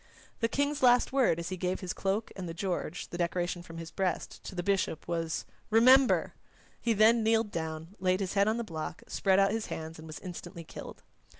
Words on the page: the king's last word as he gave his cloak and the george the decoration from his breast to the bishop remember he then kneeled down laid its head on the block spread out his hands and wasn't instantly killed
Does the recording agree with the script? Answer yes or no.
no